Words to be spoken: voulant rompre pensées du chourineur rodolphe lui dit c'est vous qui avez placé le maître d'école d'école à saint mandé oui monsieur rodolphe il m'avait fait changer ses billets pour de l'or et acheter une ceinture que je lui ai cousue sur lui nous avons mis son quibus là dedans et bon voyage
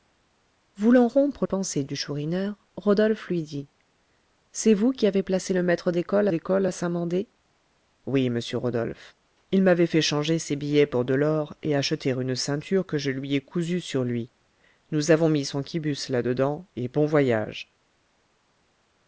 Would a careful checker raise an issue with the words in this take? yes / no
no